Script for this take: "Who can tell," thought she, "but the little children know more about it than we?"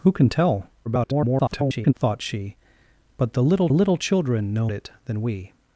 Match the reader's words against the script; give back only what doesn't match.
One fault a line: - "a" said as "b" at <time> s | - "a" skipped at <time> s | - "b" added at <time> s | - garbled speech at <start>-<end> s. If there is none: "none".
- garbled speech at 0.8-1.9 s
- "little" added at 3.7 s
- "more about" skipped at 4.7 s